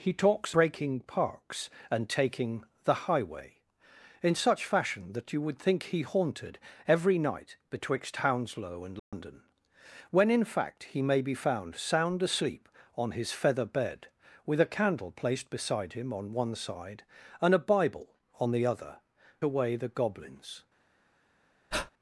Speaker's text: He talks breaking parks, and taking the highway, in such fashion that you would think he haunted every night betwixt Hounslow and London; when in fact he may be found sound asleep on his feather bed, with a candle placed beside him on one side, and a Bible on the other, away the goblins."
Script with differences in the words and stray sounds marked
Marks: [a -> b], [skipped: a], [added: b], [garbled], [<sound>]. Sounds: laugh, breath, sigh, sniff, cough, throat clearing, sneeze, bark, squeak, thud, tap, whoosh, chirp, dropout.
He talks breaking parks, and taking the highway, in such fashion that you would think he haunted every night betwixt Hounslow and London; [dropout] when in fact he may be found sound asleep on his feather bed, with a candle placed beside him on one side, and a Bible on the other, away the goblins." [breath]